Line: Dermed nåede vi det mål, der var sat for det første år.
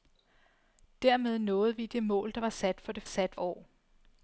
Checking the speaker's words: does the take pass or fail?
fail